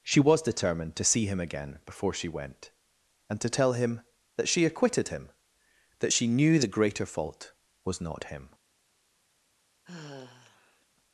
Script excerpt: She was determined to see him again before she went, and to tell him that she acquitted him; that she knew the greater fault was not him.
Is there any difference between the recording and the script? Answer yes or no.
no